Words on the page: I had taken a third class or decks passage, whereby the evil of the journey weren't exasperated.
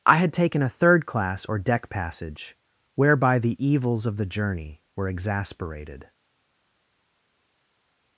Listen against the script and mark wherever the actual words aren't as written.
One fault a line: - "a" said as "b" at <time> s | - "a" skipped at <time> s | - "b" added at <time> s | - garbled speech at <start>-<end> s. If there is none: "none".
- "decks" said as "deck" at 1.6 s
- "evil" said as "evils" at 3.6 s
- "weren't" said as "were" at 4.9 s